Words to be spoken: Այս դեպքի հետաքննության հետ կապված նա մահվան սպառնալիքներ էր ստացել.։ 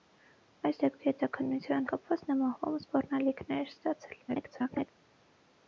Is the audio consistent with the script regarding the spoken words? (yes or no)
no